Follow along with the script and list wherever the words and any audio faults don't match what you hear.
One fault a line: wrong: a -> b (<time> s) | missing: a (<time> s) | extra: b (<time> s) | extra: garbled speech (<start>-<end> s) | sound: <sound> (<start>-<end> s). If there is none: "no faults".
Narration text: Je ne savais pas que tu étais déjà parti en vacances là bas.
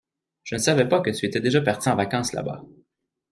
no faults